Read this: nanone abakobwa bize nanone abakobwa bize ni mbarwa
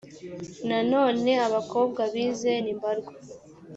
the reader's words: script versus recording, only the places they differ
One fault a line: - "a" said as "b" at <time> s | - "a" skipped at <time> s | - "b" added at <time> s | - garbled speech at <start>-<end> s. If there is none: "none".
- "nanone abakobwa bize" skipped at 2.5 s